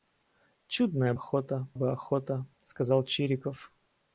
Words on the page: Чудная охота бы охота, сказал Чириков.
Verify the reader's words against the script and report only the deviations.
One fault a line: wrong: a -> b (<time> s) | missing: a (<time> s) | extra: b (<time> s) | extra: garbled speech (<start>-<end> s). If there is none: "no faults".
no faults